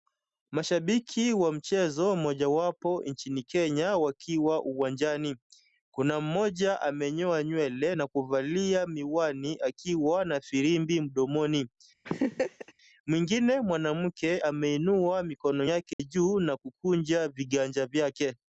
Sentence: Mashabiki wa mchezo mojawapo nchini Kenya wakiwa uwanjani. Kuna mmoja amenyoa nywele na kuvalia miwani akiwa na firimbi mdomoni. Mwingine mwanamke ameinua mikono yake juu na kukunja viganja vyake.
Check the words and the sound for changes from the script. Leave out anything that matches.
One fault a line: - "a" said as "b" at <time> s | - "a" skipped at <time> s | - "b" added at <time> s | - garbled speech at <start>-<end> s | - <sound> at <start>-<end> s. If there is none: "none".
- laugh at 12.0-12.7 s
- dropout at 15.9-16.0 s